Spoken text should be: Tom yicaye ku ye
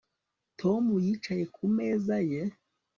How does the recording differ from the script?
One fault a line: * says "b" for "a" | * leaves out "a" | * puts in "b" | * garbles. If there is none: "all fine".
* puts in "meza"